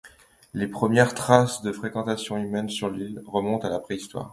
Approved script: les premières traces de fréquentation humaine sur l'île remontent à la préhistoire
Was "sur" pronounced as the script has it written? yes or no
yes